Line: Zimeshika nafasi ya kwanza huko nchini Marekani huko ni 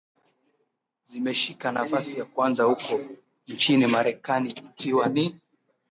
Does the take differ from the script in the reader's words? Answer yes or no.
yes